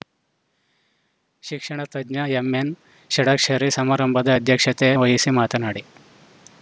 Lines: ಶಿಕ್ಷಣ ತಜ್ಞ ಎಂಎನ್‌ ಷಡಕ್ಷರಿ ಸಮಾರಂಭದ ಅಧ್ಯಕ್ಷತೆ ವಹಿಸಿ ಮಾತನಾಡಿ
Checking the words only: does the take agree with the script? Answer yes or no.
yes